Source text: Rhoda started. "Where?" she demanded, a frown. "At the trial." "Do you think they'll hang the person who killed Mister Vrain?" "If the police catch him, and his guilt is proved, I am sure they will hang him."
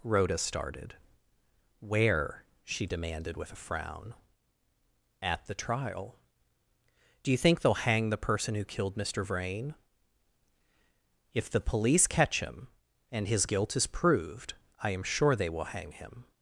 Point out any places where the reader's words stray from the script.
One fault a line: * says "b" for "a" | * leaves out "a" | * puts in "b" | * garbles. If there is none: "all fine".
* puts in "with"